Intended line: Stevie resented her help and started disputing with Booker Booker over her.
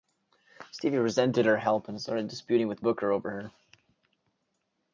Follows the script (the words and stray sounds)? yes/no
no